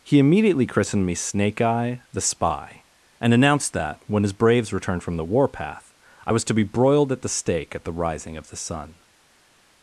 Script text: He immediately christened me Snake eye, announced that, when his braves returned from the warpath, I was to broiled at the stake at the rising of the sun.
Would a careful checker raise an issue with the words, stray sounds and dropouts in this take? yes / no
yes